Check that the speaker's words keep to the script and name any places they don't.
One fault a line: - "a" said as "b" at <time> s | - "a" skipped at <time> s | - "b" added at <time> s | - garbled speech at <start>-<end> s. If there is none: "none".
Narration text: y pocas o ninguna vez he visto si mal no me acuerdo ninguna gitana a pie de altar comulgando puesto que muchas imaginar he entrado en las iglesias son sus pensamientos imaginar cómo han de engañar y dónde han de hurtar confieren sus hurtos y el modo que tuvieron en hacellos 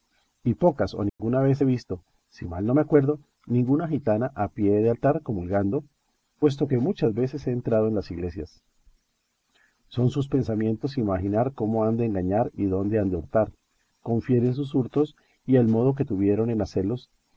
- "imaginar" said as "veces" at 7.1 s